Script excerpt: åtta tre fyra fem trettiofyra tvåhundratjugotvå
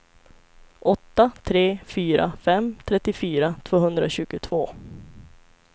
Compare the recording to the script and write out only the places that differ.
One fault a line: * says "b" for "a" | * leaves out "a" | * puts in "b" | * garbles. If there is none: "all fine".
all fine